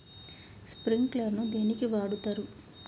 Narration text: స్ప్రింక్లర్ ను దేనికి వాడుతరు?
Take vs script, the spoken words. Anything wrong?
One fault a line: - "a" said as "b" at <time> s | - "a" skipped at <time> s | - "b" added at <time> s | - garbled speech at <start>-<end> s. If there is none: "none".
none